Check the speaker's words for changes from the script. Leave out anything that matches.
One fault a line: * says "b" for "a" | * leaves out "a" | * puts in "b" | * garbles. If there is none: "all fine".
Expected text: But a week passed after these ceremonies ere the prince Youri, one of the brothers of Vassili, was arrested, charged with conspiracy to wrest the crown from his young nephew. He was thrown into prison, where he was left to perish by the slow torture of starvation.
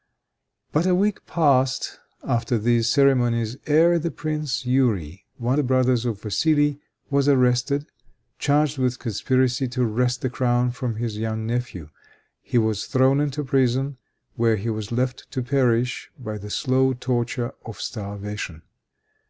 * leaves out "of"